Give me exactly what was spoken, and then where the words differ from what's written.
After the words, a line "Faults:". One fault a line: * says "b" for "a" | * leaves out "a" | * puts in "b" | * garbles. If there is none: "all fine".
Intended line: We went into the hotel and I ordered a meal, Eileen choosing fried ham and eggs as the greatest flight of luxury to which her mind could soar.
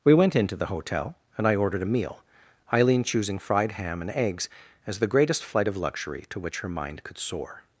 We went into the hotel and I ordered a meal, Eileen choosing fried ham and eggs as the greatest flight of luxury to which her mind could soar.
Faults:
all fine